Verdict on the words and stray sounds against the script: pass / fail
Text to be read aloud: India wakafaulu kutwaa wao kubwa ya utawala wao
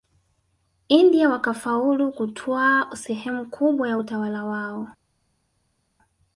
fail